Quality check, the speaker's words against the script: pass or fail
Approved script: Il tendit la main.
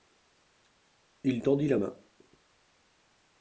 pass